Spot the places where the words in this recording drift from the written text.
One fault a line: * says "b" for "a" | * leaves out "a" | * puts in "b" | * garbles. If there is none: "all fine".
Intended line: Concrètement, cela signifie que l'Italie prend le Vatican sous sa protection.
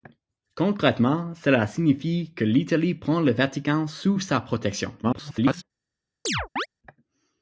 * garbles